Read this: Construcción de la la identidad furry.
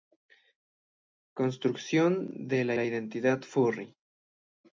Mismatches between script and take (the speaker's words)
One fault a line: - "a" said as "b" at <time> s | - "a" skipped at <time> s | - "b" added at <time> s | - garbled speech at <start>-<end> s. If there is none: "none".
none